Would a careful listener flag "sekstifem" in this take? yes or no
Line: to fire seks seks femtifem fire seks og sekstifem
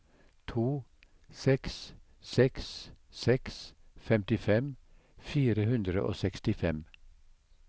no